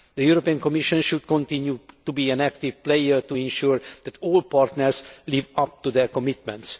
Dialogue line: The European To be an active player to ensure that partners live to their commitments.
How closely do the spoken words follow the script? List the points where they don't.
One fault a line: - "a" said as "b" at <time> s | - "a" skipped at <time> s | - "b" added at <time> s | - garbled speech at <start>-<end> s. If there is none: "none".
- "Commission should continue" added at 0.6 s
- "all" added at 4.2 s
- "up" added at 5.6 s